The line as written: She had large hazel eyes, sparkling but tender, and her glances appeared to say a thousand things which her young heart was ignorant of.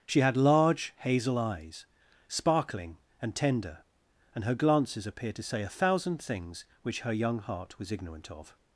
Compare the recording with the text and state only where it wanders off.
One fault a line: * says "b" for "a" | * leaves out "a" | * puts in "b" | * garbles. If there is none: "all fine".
* says "and" for "but"